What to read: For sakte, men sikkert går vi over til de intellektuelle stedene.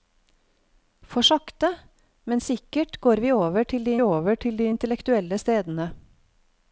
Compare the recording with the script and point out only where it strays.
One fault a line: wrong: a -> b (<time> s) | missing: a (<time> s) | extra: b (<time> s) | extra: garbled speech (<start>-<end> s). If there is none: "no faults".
extra: over til de (4.0 s)